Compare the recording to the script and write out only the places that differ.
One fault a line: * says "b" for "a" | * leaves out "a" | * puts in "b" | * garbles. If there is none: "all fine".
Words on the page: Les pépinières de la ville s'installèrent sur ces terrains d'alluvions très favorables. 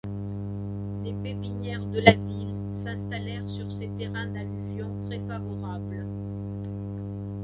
all fine